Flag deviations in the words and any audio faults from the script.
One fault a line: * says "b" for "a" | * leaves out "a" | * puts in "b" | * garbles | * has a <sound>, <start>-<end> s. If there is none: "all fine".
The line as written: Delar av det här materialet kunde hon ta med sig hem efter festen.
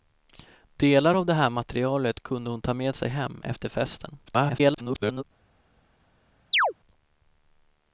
* garbles
* has a chirp, 6.5-6.7 s